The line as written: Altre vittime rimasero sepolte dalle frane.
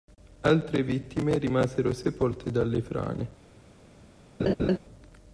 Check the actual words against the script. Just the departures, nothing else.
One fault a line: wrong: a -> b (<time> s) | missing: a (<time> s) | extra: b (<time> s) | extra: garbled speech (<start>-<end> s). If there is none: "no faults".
no faults